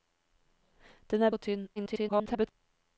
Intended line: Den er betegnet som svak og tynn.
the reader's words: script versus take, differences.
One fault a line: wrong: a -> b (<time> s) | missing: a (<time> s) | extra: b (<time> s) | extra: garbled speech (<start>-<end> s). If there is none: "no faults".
missing: betegnet som svak (1.3 s)
extra: garbled speech (1.8-2.5 s)